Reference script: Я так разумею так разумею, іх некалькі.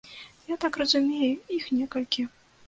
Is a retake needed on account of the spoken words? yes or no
yes